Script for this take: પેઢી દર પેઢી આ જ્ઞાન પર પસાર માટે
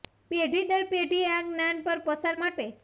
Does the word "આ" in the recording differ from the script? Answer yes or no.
no